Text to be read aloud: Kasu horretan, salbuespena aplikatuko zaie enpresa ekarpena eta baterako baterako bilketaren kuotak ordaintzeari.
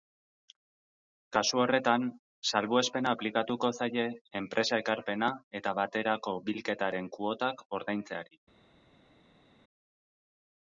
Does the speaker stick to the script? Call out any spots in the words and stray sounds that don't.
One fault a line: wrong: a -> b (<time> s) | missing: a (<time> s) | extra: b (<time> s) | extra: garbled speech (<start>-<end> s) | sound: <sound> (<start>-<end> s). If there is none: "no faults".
missing: baterako (6.4 s)